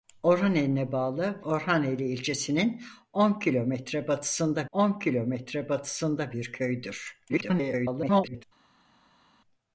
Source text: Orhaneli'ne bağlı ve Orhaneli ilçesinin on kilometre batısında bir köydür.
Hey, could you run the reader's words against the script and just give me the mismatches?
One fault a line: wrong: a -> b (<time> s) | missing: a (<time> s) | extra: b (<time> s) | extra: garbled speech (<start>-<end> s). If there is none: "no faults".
missing: ve (1.4 s)
extra: on kilometre batısında (4.7 s)
extra: garbled speech (7.3-8.4 s)